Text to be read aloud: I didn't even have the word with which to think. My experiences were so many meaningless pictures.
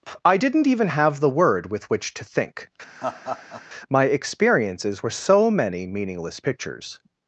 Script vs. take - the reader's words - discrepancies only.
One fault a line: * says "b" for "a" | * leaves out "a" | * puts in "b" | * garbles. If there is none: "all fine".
all fine